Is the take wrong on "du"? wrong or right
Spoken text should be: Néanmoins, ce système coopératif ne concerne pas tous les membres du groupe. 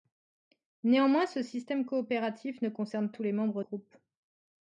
wrong